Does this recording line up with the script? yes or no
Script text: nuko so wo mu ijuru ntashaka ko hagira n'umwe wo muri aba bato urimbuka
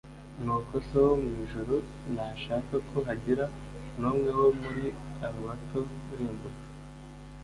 yes